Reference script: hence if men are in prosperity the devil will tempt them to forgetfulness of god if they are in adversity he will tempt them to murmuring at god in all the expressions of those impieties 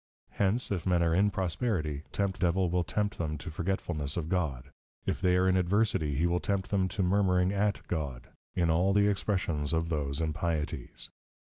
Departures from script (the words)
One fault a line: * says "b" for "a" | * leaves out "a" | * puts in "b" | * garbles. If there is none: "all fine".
* says "tempt" for "the"